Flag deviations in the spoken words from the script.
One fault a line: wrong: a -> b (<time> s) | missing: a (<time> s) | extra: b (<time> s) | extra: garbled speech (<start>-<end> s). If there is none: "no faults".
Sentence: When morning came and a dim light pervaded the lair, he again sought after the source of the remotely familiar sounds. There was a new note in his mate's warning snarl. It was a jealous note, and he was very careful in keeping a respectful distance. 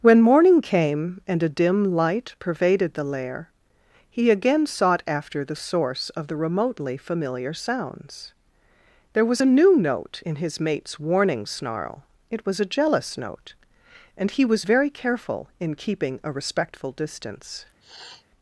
no faults